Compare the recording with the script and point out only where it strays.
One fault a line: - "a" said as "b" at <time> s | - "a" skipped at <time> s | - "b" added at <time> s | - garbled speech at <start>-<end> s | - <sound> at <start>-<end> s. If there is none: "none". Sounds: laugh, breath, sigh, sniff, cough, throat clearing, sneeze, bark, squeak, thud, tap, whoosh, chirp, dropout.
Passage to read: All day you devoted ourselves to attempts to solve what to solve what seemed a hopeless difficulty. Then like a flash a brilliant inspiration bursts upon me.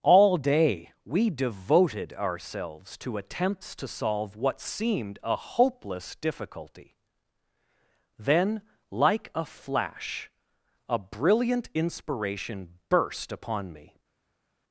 - "you" said as "we" at 1.1 s
- "to solve what" skipped at 4.6 s
- "bursts" said as "burst" at 12.9 s